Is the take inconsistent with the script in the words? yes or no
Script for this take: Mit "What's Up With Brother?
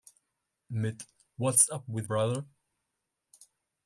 no